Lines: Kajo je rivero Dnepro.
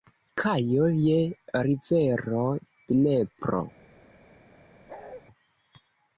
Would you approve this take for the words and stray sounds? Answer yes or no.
no